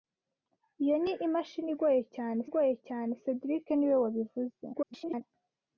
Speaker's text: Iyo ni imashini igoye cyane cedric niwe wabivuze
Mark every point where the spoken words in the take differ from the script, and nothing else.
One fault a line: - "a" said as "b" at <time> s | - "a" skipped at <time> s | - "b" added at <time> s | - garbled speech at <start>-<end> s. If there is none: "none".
- "igoye cyane" added at 2.5 s
- garbled speech at 4.7-5.2 s